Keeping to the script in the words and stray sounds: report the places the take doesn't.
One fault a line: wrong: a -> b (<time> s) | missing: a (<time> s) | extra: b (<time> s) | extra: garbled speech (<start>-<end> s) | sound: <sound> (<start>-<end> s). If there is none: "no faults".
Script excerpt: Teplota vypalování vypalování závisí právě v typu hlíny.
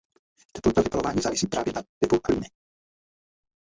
missing: vypalování (1.2 s)
wrong: v -> na (1.7 s)